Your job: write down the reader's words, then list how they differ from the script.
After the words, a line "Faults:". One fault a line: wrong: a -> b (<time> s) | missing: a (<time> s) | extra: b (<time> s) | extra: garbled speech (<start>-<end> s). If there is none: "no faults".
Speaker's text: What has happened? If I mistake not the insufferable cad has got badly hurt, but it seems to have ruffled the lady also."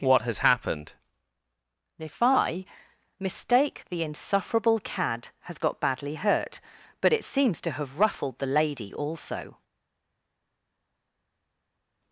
What has happened? If I mistake the insufferable cad has got badly hurt, but it seems to have ruffled the lady also."
Faults:
missing: not (3.9 s)